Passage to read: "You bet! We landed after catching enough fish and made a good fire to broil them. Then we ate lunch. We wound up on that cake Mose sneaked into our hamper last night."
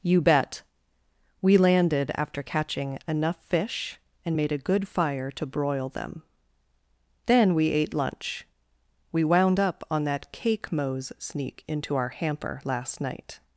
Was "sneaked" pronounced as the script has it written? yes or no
no